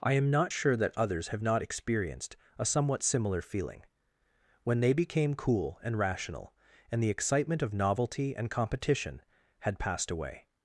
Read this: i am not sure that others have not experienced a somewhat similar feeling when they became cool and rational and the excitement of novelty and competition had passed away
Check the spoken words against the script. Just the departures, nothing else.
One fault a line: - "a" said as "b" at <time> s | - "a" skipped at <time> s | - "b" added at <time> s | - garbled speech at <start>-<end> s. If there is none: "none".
none